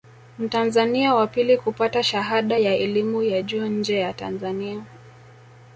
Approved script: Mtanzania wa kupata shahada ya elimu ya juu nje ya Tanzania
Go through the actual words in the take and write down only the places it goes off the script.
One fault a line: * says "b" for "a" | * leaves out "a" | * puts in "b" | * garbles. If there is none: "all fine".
* puts in "pili"